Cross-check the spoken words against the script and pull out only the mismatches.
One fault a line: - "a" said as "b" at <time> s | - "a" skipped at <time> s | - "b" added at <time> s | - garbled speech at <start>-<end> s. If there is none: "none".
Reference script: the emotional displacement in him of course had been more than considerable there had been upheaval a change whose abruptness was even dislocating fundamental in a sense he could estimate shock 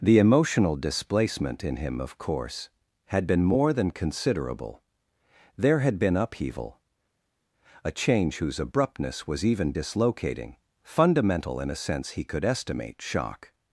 none